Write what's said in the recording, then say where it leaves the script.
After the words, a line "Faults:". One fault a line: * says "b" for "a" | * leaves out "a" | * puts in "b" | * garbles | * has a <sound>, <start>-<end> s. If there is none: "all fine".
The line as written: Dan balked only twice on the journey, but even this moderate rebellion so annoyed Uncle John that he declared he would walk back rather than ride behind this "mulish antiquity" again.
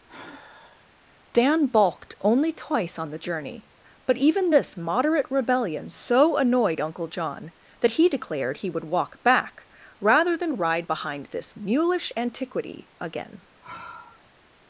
Dan balked only twice on the journey, but even this moderate rebellion so annoyed Uncle John that he declared he would walk back rather than ride behind this "mulish antiquity" again.
Faults:
* has a sigh, 0.1-0.9 s
* has a sigh, 13.6-14.3 s